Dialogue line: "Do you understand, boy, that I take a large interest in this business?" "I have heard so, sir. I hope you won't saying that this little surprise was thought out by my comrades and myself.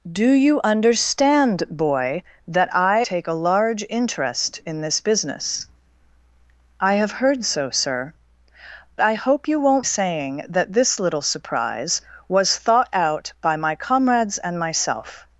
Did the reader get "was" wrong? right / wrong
right